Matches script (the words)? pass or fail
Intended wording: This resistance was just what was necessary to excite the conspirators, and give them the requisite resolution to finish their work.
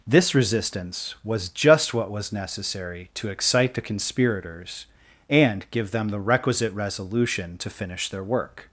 pass